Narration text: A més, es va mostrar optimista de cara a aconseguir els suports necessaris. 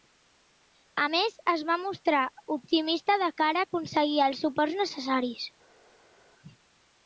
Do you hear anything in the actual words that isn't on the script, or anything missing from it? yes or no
no